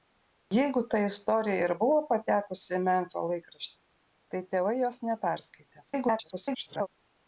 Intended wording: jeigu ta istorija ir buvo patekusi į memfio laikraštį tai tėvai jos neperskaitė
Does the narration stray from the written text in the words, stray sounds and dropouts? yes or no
yes